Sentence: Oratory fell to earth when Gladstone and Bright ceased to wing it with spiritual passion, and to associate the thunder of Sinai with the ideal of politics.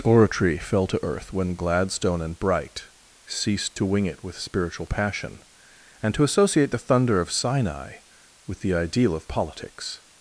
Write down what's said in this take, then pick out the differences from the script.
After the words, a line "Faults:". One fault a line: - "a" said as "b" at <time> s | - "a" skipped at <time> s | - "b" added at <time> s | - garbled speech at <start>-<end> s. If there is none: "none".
Oratory fell to earth when Gladstone and Bright ceased to wing it with spiritual passion, and to associate the thunder of Sinai with the ideal of politics.
Faults:
none